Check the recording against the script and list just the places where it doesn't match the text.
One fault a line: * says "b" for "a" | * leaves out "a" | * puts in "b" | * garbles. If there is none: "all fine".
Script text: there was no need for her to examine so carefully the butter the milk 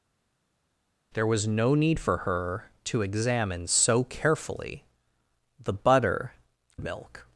all fine